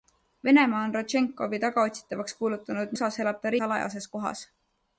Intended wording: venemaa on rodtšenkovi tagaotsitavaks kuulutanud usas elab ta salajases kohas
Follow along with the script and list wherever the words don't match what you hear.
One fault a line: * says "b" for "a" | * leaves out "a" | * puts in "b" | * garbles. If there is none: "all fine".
all fine